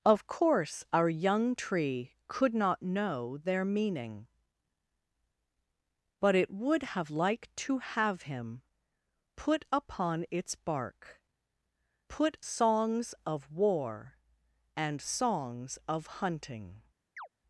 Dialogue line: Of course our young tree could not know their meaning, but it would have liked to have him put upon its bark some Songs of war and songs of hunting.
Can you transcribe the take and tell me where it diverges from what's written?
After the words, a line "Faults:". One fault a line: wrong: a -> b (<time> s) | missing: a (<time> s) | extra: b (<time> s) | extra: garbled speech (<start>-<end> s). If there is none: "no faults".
Of course our young tree could not know their meaning, but it would have liked to have him put upon its bark put Songs of war and songs of hunting.
Faults:
wrong: some -> put (12.1 s)